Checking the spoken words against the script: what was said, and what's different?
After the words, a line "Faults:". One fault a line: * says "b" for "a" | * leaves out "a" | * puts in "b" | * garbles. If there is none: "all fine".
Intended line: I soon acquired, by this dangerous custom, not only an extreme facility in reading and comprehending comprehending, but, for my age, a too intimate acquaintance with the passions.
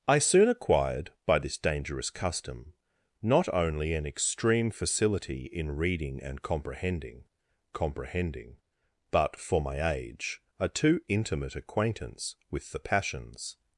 I soon acquired, by this dangerous custom, not only an extreme facility in reading and comprehending comprehending, but, for my age, a too intimate acquaintance with the passions.
Faults:
all fine